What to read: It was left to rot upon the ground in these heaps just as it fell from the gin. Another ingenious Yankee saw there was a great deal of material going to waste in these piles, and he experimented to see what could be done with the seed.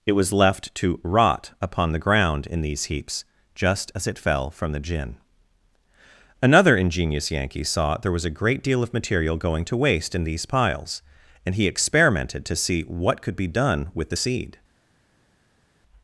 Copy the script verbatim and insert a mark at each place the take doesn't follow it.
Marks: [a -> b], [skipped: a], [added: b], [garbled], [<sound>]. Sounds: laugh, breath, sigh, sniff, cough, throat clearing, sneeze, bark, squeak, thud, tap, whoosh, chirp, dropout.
It was left to rot upon the ground in these heaps just as it fell from the gin. Another ingenious Yankee saw there was a great deal of material going to waste in these piles, and he experimented to see what could be done with the seed.